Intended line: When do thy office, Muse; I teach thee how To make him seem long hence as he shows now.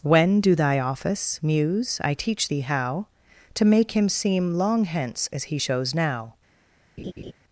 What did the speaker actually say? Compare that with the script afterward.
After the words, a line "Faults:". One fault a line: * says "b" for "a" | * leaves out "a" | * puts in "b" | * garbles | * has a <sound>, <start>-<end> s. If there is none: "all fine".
When do thy office, Muse; I teach thee how To make him seem long hence as he shows now.
Faults:
* has a laugh, 7.0-7.3 s